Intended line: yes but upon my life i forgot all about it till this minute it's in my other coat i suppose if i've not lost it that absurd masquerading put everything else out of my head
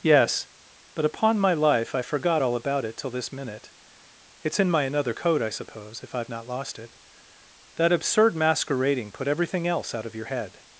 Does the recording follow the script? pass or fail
fail